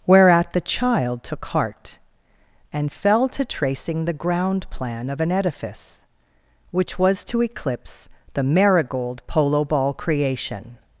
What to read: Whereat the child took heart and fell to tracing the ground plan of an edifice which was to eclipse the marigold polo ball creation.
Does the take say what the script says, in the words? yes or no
yes